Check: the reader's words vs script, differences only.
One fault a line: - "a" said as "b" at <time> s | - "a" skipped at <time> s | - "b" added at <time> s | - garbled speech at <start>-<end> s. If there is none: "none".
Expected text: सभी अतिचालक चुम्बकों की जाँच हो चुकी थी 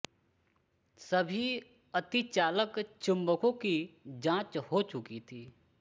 none